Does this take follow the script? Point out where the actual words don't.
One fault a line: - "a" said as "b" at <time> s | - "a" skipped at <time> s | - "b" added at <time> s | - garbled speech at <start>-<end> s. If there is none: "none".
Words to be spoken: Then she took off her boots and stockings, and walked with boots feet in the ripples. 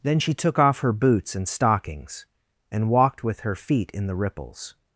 - "boots" said as "her" at 3.4 s